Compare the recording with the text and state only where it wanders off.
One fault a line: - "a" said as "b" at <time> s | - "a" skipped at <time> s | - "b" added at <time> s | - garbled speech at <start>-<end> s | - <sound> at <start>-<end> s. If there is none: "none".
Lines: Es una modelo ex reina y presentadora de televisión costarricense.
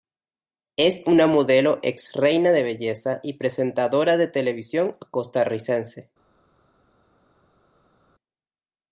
- "de belleza" added at 2.5 s